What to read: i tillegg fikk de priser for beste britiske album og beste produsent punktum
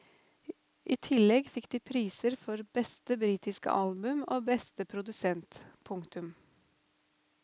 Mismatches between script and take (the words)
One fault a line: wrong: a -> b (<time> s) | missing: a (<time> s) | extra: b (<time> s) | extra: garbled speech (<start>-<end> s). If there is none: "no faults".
no faults